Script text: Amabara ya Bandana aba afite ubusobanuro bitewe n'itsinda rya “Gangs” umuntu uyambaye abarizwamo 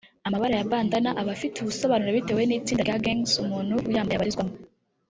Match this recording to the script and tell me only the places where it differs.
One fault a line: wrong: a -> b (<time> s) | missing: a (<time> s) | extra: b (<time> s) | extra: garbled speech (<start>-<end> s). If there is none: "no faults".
no faults